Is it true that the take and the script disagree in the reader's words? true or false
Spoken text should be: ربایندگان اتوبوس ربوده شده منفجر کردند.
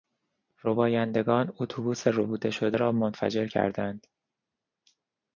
true